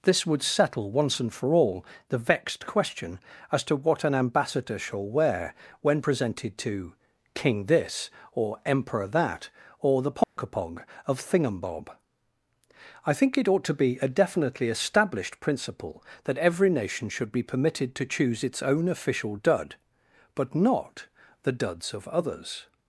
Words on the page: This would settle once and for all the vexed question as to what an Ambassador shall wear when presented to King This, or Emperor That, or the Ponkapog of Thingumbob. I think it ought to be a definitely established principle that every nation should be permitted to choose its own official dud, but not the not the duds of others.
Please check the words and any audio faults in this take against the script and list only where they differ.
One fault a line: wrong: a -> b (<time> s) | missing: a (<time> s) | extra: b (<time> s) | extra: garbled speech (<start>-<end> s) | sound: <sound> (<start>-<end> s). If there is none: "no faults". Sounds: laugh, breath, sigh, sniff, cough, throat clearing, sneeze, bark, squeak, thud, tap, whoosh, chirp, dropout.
sound: dropout (10.2-10.4 s)
missing: not the (21.5 s)